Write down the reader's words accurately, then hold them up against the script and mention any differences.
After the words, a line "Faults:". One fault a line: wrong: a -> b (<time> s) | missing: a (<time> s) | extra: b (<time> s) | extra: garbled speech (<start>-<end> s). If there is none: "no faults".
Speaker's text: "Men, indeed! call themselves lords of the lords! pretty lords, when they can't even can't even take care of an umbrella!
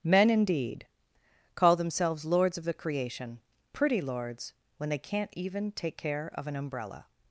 "Men, indeed! call themselves lords of the creation! pretty lords, when they can't even take care of an umbrella!
Faults:
wrong: lords -> creation (2.7 s)
missing: can't even (5.7 s)